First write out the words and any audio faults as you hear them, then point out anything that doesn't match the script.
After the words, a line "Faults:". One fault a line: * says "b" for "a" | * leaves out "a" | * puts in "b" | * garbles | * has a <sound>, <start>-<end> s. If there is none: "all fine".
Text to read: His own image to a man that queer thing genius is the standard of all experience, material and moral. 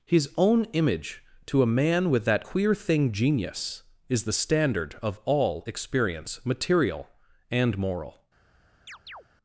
His own image to a man with that queer thing genius is the standard of all experience, material and moral.
Faults:
* puts in "with"
* has a chirp, 8.9-9.2 s